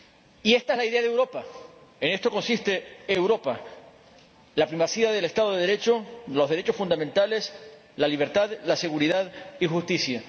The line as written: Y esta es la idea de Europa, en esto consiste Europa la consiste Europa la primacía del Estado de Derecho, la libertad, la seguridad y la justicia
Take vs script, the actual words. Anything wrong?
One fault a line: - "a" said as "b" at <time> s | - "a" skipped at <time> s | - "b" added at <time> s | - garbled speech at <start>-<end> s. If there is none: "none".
- "consiste Europa la" skipped at 4.7 s
- "los derechos fundamentales" added at 6.3 s